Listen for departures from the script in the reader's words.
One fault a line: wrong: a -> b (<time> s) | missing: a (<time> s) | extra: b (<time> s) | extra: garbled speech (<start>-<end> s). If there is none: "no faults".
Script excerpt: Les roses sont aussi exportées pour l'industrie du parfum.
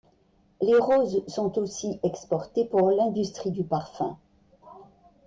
no faults